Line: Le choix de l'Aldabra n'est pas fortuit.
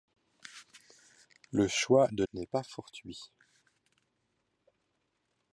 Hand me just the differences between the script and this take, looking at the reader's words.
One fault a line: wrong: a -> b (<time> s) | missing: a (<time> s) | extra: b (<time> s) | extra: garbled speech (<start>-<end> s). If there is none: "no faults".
missing: l'Aldabra (2.2 s)